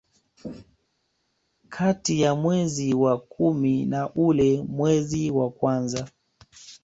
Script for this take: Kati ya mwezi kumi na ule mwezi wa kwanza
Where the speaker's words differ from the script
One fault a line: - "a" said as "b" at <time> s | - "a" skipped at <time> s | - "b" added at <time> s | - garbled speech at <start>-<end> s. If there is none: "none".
- "wa" added at 2.9 s